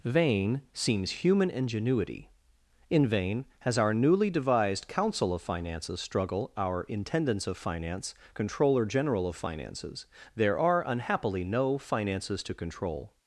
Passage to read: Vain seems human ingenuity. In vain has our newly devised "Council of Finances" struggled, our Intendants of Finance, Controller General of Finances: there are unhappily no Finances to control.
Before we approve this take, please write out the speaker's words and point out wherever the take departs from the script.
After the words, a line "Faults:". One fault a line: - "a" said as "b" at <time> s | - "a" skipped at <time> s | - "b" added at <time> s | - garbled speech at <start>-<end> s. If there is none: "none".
Vain seems human ingenuity. In vain has our newly devised "Council of Finances" struggle, our Intendants of Finance, Controller General of Finances: there are unhappily no Finances to control.
Faults:
- "struggled" said as "struggle" at 6.0 s